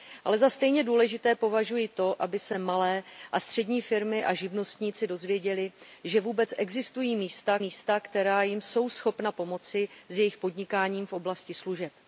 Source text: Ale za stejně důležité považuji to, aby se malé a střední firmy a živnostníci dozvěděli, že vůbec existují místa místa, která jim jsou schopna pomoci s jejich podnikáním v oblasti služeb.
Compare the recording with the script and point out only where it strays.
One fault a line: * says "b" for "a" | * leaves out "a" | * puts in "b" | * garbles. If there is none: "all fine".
all fine